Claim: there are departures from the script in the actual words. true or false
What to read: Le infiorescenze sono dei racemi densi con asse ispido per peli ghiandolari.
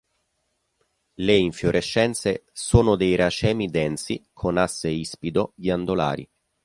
true